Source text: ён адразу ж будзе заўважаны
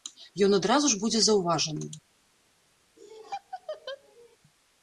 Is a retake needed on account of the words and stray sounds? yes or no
yes